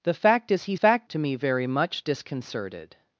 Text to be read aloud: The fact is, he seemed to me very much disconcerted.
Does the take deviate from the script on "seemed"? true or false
true